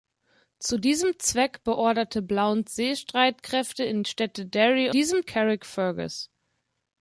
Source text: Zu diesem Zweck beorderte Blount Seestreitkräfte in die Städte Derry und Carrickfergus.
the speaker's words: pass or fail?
fail